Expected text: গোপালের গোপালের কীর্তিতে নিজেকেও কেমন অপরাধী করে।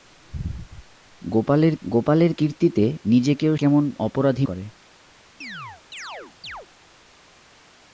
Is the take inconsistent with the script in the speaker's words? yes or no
no